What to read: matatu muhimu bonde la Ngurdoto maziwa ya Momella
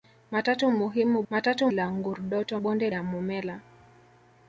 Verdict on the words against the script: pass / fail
fail